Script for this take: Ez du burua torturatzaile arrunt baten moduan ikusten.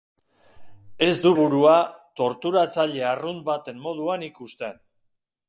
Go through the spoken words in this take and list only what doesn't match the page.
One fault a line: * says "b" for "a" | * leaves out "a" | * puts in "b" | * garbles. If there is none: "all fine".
all fine